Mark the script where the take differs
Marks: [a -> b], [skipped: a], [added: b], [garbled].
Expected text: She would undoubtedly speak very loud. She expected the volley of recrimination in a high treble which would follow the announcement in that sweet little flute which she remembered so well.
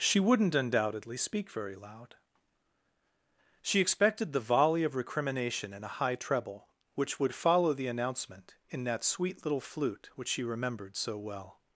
She [would -> wouldn't] undoubtedly speak very loud. She expected the volley of recrimination in a high treble which would follow the announcement in that sweet little flute which she remembered so well.